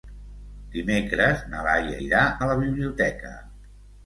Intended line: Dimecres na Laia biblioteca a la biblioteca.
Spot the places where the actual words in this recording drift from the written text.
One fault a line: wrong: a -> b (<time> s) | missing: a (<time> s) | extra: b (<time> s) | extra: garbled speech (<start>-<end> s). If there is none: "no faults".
wrong: biblioteca -> irà (2.0 s)